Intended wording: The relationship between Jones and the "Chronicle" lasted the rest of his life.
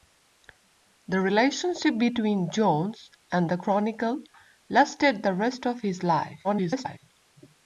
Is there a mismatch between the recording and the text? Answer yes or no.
yes